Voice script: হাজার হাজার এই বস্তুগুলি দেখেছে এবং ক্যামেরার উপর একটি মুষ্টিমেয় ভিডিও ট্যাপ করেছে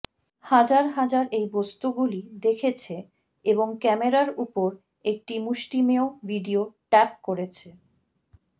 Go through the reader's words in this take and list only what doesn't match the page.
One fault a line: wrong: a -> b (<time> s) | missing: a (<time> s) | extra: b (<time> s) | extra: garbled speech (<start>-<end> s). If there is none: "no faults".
no faults